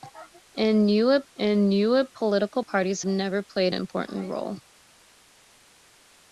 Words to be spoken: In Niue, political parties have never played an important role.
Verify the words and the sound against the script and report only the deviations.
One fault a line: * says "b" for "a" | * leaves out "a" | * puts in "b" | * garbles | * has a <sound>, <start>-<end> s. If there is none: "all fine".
* puts in "in Niue"
* leaves out "have"
* leaves out "an"